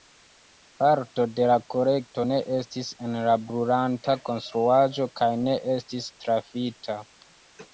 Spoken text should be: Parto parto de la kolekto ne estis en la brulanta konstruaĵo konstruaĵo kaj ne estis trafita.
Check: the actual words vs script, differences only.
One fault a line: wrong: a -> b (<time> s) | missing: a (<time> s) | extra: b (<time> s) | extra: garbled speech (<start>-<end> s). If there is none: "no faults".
missing: parto (1.2 s)
missing: konstruaĵo (5.1 s)